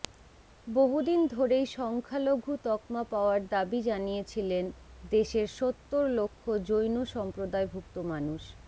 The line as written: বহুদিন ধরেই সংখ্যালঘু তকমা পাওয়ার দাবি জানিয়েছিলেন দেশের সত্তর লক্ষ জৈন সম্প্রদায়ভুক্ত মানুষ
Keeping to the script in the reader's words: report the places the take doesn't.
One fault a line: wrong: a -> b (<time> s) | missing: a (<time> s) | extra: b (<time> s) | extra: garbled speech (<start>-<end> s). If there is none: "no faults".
no faults